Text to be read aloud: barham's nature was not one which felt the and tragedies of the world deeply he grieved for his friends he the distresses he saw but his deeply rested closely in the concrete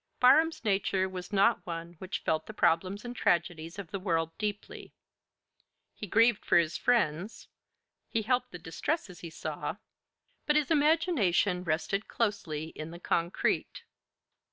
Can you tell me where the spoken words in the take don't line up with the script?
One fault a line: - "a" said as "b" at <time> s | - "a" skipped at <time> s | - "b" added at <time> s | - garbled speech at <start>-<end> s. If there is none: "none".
- "problems" added at 2.5 s
- "helped" added at 8.2 s
- "deeply" said as "imagination" at 10.7 s